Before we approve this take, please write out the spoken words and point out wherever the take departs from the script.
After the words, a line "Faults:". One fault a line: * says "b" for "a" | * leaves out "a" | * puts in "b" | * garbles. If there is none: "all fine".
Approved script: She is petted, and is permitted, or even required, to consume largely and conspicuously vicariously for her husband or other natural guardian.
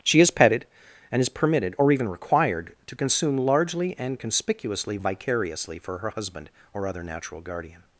She is petted, and is permitted, or even required, to consume largely and conspicuously vicariously for her husband or other natural guardian.
Faults:
all fine